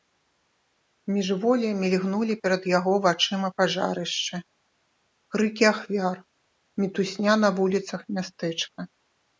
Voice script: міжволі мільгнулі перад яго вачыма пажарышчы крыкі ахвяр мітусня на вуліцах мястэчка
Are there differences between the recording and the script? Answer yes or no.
no